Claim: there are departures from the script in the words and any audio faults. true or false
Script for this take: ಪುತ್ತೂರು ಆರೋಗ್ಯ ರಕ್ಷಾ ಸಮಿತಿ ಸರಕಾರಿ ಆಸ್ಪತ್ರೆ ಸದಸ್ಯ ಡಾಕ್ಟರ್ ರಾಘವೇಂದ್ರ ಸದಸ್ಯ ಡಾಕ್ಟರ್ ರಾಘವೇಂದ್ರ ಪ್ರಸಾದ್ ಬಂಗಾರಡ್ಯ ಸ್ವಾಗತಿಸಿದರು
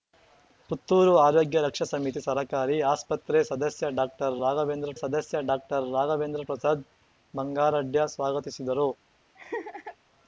true